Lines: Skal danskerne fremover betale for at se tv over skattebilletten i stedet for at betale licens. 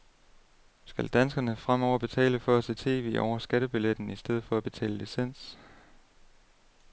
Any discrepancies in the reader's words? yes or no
no